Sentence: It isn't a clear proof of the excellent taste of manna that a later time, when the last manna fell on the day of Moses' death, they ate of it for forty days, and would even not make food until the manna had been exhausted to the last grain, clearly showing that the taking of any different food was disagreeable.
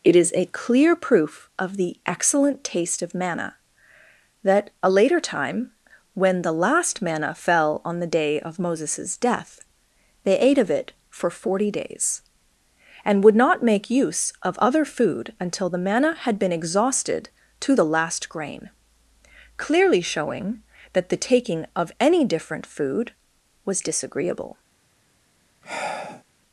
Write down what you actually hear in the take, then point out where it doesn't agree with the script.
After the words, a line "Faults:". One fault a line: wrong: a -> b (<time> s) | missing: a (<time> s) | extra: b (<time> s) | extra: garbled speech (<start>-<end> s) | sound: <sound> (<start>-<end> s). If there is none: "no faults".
It is a clear proof of the excellent taste of manna that a later time, when the last manna fell on the day of Moses' death, they ate of it for forty days, and would not make use of other food until the manna had been exhausted to the last grain, clearly showing that the taking of any different food was disagreeable.
Faults:
wrong: isn't -> is (0.1 s)
missing: even (13.3 s)
extra: use of other (13.9 s)
sound: sigh (25.6-26.2 s)